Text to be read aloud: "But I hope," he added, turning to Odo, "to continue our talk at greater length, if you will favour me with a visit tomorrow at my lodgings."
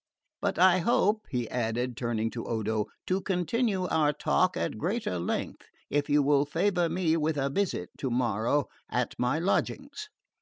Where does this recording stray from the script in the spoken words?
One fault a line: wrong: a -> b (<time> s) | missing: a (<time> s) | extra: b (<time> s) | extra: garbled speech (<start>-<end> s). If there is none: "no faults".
no faults